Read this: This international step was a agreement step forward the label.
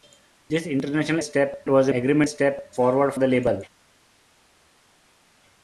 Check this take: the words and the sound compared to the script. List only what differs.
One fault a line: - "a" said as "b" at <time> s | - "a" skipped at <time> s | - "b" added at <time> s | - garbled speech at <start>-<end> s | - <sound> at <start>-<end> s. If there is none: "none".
none